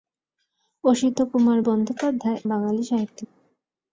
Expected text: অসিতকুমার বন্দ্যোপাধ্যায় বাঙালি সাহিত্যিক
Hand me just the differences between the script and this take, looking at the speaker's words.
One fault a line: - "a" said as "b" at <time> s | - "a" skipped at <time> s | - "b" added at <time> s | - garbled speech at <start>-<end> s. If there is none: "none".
none